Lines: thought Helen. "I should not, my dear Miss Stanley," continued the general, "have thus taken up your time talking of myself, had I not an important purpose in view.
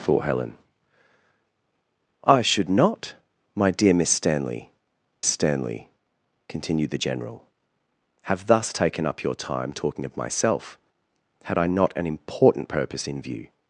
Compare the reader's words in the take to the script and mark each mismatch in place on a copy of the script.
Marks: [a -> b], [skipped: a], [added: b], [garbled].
thought Helen. "I should not, my dear Miss Stanley," [added: Stanley] continued the general, "have thus taken up your time talking of myself, had I not an important purpose in view.